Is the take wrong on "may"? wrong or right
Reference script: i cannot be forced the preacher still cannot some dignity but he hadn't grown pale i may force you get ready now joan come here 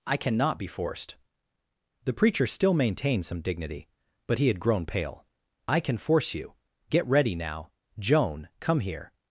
wrong